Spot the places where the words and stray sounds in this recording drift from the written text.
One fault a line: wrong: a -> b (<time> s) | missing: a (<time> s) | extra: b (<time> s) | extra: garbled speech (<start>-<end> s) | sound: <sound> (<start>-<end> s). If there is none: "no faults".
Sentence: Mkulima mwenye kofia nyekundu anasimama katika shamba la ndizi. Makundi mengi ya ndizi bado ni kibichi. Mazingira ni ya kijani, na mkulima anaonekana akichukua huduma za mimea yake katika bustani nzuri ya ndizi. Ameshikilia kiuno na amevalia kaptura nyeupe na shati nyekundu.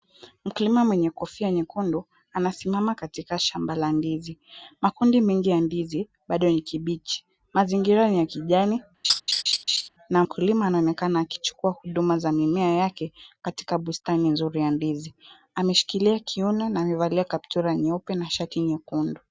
sound: laugh (9.0-9.9 s)